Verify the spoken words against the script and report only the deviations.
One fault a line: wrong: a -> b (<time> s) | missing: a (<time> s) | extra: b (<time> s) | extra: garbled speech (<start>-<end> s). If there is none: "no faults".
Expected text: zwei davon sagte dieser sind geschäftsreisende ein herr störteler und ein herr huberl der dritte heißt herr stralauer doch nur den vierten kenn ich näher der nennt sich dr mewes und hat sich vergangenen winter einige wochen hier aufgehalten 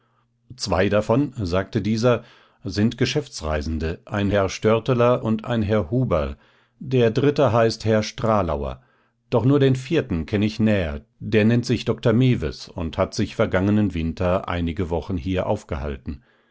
no faults